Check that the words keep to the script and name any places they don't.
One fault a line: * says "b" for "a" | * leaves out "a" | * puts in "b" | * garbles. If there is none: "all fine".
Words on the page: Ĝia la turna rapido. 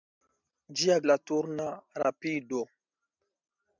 all fine